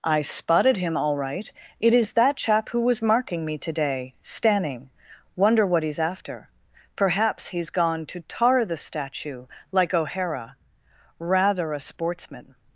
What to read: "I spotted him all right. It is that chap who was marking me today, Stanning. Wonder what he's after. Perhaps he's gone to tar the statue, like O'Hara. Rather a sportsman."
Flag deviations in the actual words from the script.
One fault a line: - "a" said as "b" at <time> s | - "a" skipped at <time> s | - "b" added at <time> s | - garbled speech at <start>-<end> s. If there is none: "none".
none